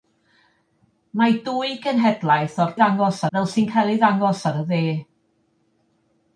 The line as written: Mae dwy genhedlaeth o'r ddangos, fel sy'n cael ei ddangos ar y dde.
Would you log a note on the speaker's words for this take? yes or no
no